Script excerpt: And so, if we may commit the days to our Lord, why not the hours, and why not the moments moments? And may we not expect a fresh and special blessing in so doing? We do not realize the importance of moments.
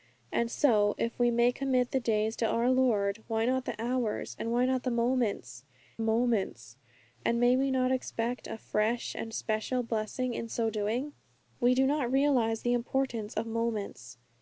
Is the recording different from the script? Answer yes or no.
no